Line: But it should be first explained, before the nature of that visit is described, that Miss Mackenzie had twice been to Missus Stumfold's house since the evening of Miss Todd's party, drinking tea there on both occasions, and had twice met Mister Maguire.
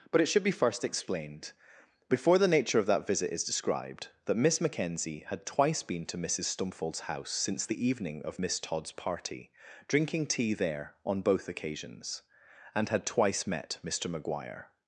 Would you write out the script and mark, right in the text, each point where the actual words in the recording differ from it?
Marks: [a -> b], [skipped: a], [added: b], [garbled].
But it should be first explained, before the nature of that visit is described, that Miss Mackenzie had twice been to Missus Stumfold's house since the evening of Miss Todd's party, drinking tea there on both occasions, and had twice met Mister Maguire.